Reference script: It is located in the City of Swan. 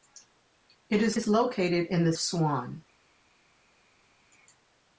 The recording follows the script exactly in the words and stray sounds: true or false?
false